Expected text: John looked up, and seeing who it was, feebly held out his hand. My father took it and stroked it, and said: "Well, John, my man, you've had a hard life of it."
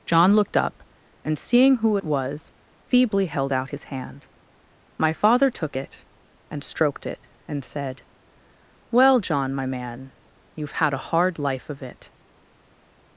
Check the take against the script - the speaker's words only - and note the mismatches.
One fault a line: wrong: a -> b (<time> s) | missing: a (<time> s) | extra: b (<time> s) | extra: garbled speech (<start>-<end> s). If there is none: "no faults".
no faults